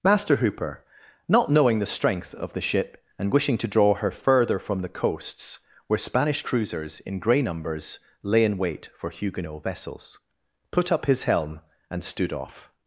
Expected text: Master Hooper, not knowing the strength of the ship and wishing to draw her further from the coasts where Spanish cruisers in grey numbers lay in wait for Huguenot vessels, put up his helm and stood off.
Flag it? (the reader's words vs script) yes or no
no